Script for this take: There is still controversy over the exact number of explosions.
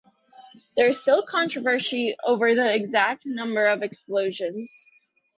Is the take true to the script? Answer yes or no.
yes